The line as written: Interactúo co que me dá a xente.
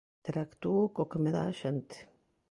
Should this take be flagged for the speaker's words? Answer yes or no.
no